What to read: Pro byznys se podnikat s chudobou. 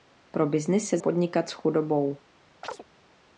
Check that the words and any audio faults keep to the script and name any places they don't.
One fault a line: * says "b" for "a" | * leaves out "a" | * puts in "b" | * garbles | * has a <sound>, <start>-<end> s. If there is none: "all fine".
* has a chirp, 2.6-2.8 s